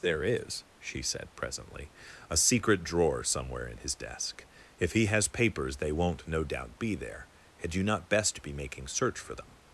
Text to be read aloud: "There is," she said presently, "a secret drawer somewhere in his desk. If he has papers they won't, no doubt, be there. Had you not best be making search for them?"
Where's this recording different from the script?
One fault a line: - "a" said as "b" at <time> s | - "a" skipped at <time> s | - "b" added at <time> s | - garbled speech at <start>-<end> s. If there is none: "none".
none